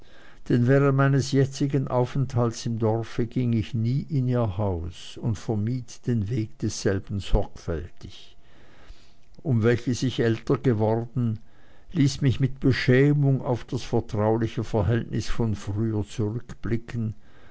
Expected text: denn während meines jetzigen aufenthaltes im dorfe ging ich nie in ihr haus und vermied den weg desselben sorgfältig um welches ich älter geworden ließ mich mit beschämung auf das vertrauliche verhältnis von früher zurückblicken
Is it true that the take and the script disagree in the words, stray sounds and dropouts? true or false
false